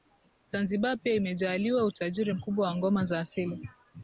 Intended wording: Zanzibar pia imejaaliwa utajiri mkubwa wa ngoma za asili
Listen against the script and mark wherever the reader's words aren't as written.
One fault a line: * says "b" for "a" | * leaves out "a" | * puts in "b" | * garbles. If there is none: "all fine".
all fine